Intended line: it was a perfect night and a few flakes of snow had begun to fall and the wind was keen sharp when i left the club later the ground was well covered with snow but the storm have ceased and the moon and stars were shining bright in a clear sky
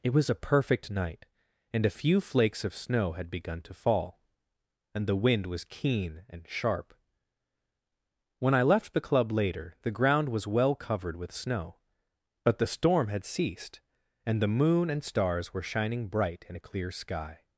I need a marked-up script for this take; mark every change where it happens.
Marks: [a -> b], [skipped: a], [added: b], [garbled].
it was a perfect night and a few flakes of snow had begun to fall and the wind was keen [added: and] sharp when i left the club later the ground was well covered with snow but the storm [have -> had] ceased and the moon and stars were shining bright in a clear sky